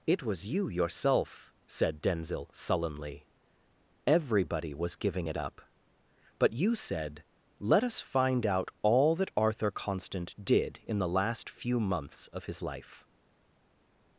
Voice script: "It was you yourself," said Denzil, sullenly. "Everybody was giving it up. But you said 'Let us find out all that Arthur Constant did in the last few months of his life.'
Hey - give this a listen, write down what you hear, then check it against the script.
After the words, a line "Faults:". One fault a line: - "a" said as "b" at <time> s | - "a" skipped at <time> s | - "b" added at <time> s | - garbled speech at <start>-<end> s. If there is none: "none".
"It was you yourself," said Denzil, sullenly. "Everybody was giving it up. But you said 'Let us find out all that Arthur Constant did in the last few months of his life.'
Faults:
none